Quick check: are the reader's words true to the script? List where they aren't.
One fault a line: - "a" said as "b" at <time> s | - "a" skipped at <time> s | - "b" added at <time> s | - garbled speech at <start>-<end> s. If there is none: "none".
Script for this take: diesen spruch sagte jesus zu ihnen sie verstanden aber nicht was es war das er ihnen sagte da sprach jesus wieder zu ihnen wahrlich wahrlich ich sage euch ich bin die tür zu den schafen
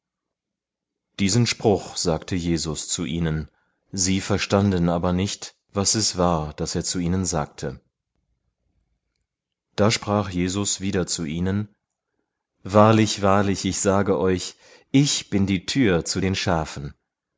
- "zu" added at 6.8 s